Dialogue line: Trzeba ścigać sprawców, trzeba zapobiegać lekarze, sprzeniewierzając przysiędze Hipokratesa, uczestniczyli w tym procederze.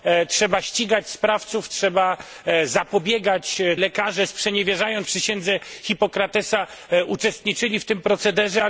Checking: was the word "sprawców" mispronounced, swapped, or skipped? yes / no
no